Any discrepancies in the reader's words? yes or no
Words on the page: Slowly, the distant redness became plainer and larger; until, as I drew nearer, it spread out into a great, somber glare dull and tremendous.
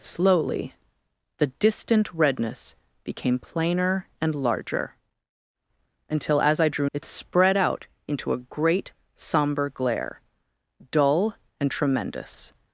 yes